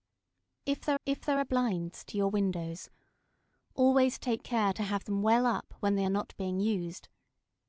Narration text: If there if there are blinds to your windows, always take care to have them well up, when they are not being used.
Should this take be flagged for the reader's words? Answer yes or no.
no